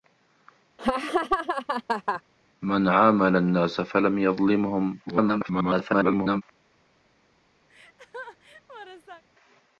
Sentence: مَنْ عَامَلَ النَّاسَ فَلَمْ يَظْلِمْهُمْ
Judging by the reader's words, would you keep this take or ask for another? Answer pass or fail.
fail